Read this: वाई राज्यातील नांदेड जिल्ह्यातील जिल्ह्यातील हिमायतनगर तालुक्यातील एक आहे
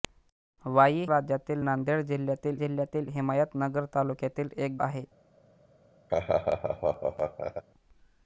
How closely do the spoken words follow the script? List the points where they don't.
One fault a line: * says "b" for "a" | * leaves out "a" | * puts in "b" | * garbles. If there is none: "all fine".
all fine